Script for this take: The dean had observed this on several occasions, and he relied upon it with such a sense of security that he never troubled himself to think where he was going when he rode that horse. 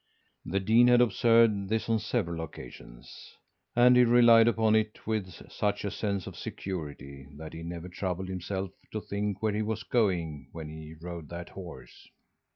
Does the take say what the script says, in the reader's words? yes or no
yes